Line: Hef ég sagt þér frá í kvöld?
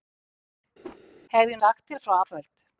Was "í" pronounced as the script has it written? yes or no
yes